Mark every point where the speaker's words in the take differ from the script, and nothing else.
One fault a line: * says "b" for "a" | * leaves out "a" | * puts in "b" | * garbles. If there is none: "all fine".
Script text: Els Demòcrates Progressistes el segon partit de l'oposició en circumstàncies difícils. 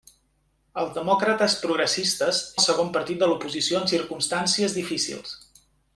all fine